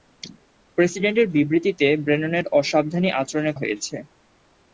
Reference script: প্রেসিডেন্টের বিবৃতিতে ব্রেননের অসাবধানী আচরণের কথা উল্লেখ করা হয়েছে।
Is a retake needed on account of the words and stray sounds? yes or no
yes